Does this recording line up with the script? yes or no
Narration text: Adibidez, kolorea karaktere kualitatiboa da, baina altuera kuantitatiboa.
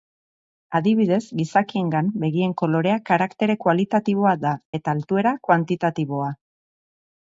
no